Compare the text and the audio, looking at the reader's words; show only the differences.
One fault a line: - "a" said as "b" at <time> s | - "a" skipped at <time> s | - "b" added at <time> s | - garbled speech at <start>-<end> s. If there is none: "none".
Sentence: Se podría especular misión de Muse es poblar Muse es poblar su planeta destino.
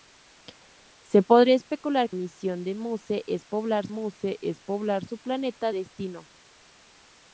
none